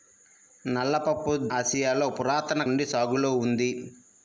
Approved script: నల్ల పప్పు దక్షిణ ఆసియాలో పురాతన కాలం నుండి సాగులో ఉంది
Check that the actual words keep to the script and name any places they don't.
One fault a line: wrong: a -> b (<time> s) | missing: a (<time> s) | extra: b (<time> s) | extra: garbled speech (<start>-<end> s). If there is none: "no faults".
missing: దక్షిణ (1.3 s)
missing: కాలం (2.6 s)